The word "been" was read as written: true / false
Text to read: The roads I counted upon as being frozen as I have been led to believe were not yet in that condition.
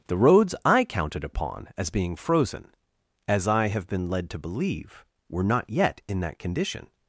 true